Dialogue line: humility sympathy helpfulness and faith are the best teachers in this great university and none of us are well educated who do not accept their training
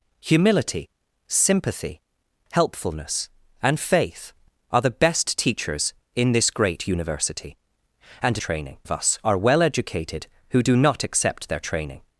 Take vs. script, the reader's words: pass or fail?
fail